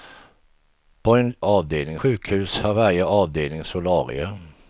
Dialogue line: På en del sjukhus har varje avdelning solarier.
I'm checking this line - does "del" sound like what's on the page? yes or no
no